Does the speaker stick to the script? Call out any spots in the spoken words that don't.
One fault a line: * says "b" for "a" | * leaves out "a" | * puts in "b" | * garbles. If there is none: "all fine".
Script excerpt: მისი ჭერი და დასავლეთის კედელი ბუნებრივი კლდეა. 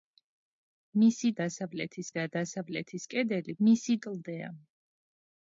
* says "დასავლეთის" for "ჭერი"
* says "მისი" for "ბუნებრივი"